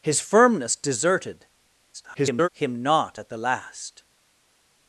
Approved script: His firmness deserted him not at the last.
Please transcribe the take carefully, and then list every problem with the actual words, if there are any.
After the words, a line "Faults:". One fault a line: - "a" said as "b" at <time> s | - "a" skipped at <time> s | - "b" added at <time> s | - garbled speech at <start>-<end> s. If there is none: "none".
His firmness deserted [garbled] him not at the last.
Faults:
- garbled speech at 1.9-2.5 s